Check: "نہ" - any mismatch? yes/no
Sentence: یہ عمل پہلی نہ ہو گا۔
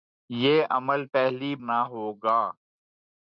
no